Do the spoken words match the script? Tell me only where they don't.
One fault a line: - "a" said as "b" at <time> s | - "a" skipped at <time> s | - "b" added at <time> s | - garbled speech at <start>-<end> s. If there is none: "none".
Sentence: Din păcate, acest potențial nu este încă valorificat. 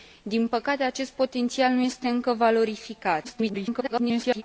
- garbled speech at 3.2-4.4 s